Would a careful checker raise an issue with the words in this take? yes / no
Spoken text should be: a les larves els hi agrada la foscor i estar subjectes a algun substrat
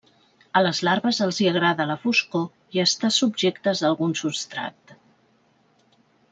no